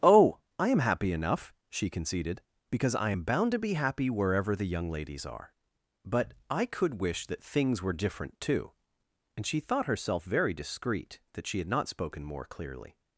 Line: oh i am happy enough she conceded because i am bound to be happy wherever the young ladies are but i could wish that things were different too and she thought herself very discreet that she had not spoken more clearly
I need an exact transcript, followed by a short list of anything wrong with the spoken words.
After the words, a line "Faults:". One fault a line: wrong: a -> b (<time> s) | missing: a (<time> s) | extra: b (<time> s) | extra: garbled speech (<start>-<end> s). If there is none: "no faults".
oh i am happy enough she conceded because i am bound to be happy wherever the young ladies are but i could wish that things were different too and she thought herself very discreet that she had not spoken more clearly
Faults:
no faults